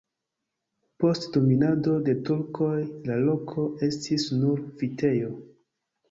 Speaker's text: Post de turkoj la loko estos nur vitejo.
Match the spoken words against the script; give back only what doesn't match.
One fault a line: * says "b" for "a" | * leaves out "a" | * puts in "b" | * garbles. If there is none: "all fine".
* puts in "dominado"
* says "estis" for "estos"